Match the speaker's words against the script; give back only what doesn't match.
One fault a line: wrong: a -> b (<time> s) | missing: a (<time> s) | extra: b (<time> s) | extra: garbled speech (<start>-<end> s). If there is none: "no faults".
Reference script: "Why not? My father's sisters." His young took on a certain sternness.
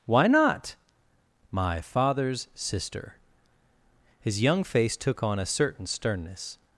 wrong: sisters -> sister (2.5 s)
extra: face (4.6 s)